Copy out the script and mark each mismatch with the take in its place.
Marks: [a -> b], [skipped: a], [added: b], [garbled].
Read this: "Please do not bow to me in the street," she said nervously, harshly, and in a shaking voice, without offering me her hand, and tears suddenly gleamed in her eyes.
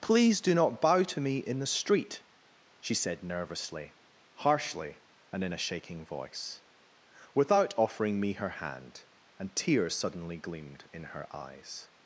"Please do not bow to me in the street," she said nervously, harshly, and in a shaking voice, without offering me her hand, and tears suddenly gleamed in her eyes.